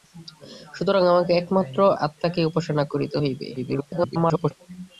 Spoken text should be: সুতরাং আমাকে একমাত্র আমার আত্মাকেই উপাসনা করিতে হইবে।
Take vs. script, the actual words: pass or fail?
fail